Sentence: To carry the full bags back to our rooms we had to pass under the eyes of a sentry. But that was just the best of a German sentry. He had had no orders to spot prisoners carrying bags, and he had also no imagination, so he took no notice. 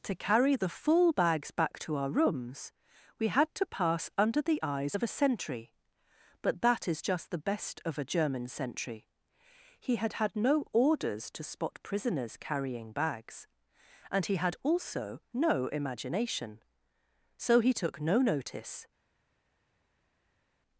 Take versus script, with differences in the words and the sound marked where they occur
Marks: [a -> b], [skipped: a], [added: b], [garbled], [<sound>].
To carry the full bags back to our rooms we had to pass under the eyes of a sentry. But that [was -> is] just the best of a German sentry. He had had no orders to spot prisoners carrying bags, and he had also no imagination, so he took no notice.